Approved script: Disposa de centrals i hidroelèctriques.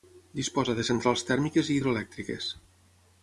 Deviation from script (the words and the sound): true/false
true